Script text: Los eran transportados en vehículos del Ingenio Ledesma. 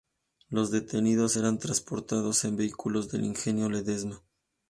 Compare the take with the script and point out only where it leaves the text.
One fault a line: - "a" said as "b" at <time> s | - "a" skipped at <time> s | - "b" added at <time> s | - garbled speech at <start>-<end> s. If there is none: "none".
- "detenidos" added at 0.7 s